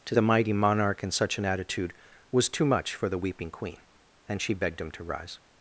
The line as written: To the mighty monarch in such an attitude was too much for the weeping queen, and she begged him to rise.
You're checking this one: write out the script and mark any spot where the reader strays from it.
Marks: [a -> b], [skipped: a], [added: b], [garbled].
To the mighty monarch in such an attitude was too much for the weeping queen, and she begged him to rise.